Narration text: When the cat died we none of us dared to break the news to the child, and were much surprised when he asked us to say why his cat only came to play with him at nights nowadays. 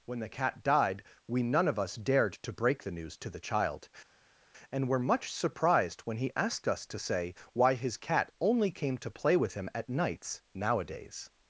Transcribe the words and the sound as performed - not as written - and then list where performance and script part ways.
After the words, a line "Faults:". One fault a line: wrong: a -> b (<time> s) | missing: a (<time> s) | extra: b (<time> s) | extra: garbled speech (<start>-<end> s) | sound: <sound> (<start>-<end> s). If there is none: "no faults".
When the cat died we none of us dared to break the news to the child, and were much surprised when he asked us to say why his cat only came to play with him at nights nowadays.
Faults:
no faults